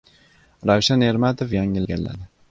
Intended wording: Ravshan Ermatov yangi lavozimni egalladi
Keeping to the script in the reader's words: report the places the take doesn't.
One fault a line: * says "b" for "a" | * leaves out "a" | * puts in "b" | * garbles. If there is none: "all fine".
* leaves out "lavozimni"